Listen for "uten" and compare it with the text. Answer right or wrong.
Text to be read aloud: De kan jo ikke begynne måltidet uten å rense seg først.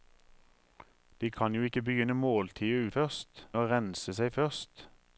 wrong